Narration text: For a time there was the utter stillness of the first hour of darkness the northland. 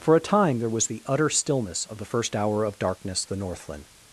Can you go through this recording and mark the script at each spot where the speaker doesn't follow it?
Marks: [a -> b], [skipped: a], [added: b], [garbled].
For a time there was the utter stillness of the first hour of darkness the northland.